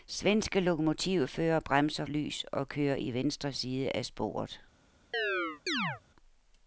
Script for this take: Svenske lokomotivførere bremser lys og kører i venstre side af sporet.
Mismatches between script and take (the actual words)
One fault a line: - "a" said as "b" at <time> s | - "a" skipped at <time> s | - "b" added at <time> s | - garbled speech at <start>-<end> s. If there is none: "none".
none